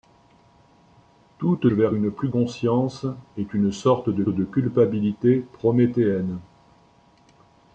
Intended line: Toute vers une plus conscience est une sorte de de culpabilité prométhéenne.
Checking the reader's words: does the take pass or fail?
pass